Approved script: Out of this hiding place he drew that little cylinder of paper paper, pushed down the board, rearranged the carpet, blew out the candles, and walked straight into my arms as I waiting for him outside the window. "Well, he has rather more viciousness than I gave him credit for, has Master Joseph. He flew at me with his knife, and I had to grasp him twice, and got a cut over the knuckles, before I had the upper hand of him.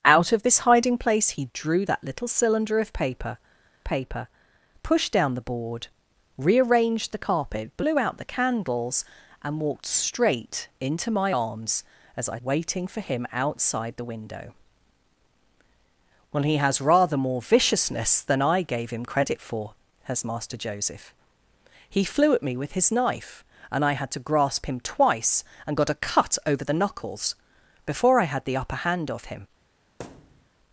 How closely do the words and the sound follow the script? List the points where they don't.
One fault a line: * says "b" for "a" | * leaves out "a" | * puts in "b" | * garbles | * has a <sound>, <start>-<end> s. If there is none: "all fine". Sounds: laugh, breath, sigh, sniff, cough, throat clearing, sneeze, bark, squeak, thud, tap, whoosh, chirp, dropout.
* has a thud, 30.0-30.5 s